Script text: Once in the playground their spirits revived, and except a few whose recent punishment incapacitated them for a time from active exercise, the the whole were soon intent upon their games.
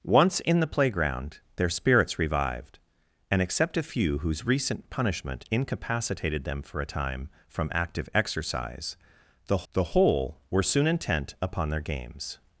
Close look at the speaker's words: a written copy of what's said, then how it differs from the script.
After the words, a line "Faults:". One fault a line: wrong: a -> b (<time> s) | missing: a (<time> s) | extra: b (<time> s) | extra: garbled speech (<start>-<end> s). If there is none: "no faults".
Once in the playground their spirits revived, and except a few whose recent punishment incapacitated them for a time from active exercise, the the whole were soon intent upon their games.
Faults:
no faults